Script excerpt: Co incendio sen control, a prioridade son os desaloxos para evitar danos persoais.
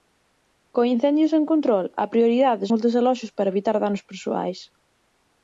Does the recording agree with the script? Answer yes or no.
no